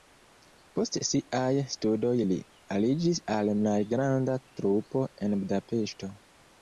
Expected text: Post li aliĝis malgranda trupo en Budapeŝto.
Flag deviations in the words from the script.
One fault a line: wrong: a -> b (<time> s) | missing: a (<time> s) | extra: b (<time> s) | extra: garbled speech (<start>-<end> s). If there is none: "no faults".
extra: siaj studoj (1.1 s)
extra: al (3.4 s)